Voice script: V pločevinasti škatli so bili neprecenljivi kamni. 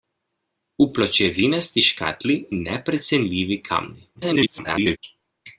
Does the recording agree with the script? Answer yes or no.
no